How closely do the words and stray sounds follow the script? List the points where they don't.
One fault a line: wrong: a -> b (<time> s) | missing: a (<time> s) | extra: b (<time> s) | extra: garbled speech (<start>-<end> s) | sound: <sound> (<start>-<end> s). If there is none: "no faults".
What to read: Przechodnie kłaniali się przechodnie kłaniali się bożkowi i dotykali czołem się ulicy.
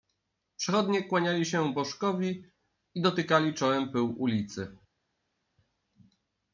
missing: przechodnie kłaniali się (1.7 s)
wrong: się -> pyłu (3.9 s)